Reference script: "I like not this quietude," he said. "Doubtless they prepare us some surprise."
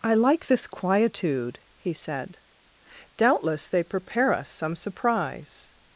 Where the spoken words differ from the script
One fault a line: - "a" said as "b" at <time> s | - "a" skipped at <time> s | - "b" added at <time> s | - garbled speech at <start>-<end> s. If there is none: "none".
- "not" skipped at 0.5 s